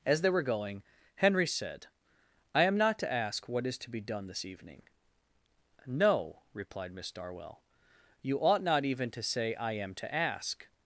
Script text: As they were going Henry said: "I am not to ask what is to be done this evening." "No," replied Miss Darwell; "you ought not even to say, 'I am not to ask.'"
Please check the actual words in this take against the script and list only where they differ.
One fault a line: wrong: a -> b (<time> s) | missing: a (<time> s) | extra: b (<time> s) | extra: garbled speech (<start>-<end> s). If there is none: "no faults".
missing: not (9.9 s)